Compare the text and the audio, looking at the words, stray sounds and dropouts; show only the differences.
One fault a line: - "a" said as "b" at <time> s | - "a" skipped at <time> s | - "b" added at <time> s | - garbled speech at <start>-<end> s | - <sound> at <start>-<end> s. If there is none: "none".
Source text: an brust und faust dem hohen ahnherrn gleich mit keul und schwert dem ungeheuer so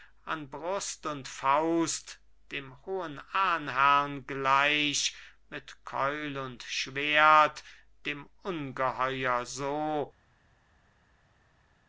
none